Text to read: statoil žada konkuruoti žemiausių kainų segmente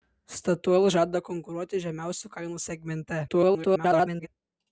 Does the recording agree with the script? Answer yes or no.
no